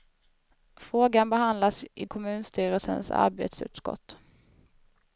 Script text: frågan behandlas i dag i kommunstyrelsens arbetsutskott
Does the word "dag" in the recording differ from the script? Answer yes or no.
yes